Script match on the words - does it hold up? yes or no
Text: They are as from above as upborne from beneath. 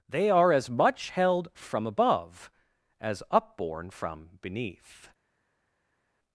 no